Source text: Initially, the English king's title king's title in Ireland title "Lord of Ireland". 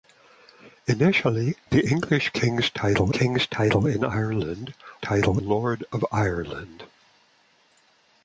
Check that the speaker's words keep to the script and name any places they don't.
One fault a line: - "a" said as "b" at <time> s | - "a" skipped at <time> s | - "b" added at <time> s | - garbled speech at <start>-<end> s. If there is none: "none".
none